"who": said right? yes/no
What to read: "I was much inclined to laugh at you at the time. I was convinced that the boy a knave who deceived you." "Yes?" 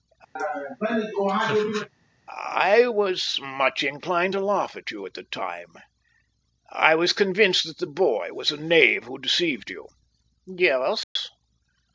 yes